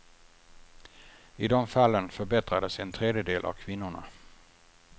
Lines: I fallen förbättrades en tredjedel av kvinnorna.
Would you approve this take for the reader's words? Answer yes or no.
no